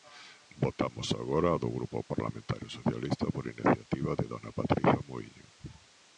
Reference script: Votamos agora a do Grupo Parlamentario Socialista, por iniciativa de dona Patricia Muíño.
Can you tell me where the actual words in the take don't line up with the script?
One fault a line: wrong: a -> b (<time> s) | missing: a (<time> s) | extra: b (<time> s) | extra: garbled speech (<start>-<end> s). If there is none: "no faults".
no faults